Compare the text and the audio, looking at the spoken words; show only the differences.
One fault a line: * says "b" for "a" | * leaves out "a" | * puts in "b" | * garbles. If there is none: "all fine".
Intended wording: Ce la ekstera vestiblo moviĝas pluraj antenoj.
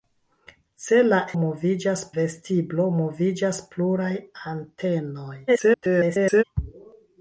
* says "moviĝas" for "ekstera"
* garbles